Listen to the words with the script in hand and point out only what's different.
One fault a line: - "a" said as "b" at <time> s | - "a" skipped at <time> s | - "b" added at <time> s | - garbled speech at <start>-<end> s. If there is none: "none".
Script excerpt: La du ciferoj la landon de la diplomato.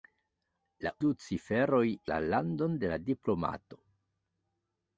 none